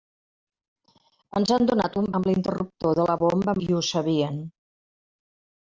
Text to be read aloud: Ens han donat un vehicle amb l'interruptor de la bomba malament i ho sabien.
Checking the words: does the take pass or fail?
fail